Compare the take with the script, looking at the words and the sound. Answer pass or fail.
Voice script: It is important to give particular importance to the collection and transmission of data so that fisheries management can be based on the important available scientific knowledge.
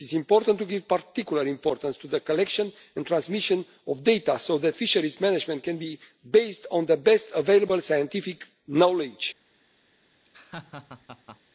fail